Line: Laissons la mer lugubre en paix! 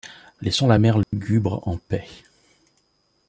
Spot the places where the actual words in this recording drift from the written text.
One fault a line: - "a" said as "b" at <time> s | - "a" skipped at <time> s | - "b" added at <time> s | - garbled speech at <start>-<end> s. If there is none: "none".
none